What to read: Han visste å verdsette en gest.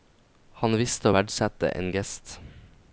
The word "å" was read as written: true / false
true